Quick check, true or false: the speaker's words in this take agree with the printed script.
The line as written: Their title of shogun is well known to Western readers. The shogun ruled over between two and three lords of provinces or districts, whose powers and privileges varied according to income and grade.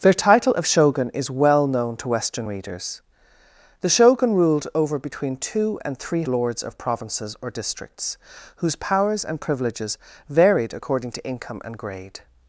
true